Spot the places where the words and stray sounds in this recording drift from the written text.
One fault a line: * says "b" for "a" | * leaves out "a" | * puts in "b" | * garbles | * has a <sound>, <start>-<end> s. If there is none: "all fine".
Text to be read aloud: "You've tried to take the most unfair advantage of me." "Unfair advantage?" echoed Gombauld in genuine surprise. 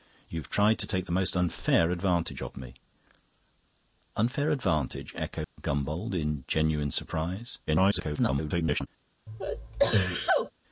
* has a dropout, 5.4-5.6 s
* garbles
* has a sneeze, 9.3-10.5 s